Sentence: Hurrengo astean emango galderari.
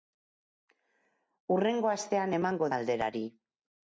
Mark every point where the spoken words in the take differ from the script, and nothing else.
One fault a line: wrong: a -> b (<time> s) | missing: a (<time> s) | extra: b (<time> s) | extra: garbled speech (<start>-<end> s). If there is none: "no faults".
no faults